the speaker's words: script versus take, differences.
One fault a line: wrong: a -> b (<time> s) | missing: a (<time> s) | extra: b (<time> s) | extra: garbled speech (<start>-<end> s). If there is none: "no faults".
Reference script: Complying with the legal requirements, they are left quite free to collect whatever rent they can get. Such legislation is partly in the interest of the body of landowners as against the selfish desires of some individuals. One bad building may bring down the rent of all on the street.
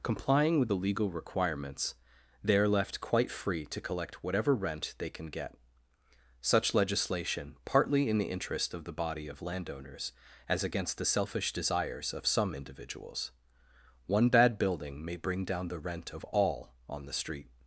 missing: is (7.6 s)